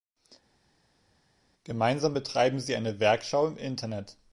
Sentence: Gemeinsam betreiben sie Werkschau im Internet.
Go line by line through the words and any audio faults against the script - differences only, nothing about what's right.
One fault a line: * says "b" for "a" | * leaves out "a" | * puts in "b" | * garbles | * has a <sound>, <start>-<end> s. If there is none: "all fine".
* puts in "eine"